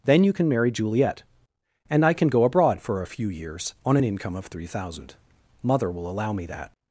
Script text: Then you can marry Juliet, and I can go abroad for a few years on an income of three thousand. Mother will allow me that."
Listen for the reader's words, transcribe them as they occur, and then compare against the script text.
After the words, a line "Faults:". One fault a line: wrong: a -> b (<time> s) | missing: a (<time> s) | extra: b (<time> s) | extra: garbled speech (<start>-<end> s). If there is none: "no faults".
Then you can marry Juliet, and I can go abroad for a few years on an income of three thousand. Mother will allow me that."
Faults:
no faults